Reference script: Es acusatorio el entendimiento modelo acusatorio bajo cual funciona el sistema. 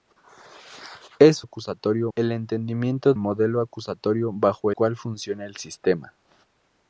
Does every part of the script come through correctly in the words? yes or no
yes